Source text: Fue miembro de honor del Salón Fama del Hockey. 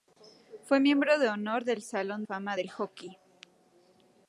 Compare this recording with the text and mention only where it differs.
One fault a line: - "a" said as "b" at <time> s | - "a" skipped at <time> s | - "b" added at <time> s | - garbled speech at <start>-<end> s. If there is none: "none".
none